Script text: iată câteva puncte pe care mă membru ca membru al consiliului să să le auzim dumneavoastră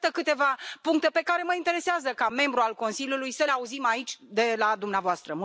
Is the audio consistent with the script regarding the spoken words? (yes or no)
no